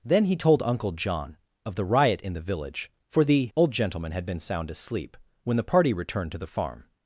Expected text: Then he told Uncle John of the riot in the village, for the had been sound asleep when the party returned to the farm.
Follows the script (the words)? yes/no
no